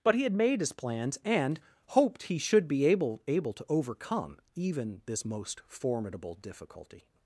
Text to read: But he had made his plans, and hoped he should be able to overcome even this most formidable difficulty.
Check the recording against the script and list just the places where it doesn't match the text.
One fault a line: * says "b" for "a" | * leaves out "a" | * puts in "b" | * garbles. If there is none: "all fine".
* puts in "able"